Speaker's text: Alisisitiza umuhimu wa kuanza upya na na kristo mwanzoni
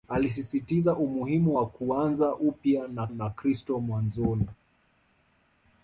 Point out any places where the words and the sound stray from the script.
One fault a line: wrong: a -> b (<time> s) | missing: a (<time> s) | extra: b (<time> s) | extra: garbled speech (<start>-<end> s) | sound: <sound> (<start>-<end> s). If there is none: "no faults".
no faults